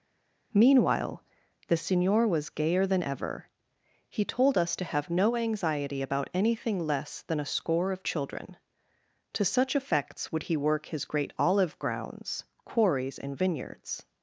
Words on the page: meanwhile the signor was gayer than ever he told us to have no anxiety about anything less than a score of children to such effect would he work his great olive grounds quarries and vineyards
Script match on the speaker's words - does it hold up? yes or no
no